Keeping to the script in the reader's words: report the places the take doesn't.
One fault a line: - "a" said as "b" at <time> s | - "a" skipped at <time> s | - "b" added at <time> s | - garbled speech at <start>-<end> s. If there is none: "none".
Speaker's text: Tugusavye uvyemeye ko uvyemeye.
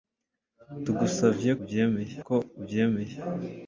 none